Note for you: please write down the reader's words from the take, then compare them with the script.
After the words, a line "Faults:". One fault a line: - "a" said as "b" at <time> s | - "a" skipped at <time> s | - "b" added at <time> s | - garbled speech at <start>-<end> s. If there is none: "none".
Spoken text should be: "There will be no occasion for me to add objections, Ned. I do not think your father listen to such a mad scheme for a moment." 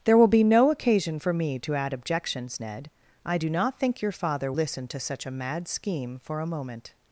"There will be no occasion for me to add objections, Ned. I do not think your father listen to such a mad scheme for a moment."
Faults:
none